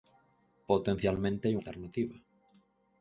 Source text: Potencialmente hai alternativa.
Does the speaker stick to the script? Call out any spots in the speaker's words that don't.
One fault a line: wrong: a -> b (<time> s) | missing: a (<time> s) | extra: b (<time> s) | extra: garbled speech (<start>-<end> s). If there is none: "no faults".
no faults